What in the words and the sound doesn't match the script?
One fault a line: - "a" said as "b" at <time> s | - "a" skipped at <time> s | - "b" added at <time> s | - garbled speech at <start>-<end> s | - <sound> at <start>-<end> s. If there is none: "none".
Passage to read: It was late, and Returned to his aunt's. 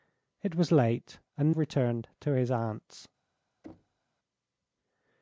- thud at 3.6-4.0 s